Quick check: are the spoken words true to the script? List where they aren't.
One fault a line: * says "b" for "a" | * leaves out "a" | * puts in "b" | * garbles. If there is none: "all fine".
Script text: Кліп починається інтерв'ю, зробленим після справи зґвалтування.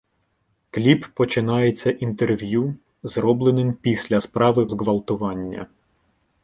all fine